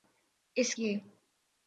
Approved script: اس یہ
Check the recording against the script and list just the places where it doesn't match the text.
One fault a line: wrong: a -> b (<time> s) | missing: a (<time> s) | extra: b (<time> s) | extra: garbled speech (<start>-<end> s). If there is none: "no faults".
no faults